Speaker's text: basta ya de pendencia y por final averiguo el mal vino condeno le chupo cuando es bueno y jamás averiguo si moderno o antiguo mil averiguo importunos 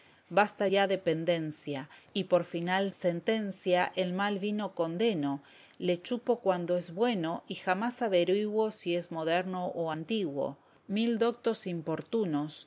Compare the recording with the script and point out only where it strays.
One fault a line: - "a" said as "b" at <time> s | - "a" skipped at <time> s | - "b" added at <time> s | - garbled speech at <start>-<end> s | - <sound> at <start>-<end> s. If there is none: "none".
- "averiguo" said as "sentencia" at 2.9 s
- "es" added at 9.0 s
- "averiguo" said as "doctos" at 11.2 s